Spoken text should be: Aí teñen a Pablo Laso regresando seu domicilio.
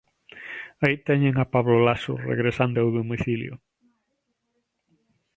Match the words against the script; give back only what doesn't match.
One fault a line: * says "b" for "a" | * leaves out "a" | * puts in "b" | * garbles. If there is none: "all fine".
all fine